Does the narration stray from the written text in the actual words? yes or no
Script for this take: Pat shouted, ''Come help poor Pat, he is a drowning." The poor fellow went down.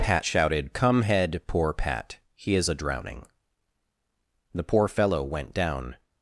yes